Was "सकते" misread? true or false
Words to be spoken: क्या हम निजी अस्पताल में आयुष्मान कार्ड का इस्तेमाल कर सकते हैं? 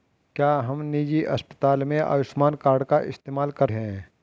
true